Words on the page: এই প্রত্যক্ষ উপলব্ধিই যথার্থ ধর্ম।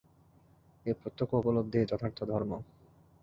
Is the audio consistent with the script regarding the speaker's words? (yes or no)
yes